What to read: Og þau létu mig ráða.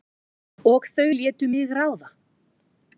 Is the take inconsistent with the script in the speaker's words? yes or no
no